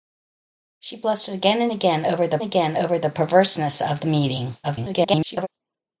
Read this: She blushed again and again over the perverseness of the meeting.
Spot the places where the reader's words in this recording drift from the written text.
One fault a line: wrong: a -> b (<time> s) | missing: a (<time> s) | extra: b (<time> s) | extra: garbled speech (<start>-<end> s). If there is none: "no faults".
extra: again over the (2.4 s)
extra: garbled speech (4.6-5.5 s)